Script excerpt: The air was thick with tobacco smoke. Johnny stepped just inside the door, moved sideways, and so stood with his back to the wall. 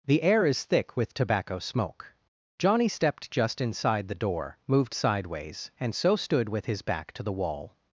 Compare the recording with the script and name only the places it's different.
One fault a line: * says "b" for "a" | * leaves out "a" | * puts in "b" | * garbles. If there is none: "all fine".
* says "is" for "was"